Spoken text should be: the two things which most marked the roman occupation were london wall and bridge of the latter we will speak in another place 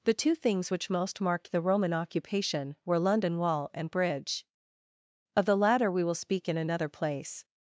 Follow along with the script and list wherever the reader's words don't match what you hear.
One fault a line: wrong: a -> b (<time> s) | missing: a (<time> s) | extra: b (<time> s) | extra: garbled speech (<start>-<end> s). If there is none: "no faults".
no faults